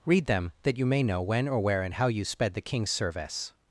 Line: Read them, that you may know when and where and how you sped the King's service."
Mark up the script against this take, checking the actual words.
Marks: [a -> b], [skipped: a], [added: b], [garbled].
Read them, that you may know when [and -> or] where and how you sped the King's service."